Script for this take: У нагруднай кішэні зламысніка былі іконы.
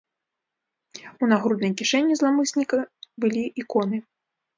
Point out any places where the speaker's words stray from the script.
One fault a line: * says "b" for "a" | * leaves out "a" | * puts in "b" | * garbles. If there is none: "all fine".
all fine